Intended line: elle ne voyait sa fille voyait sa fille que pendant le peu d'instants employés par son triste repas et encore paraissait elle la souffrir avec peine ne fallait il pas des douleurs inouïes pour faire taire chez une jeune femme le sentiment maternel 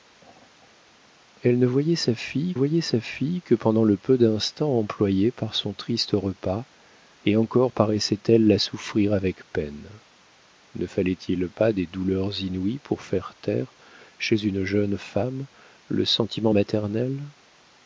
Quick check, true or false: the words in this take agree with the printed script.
true